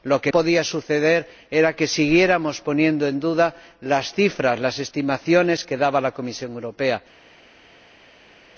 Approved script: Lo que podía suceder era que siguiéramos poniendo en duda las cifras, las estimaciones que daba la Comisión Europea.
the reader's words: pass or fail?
pass